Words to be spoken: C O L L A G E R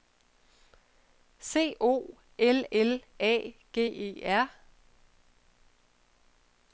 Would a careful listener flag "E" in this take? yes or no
no